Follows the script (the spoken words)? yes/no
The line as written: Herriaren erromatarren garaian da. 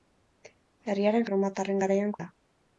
yes